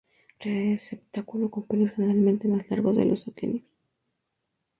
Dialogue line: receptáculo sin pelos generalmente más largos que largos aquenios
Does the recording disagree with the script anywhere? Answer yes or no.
yes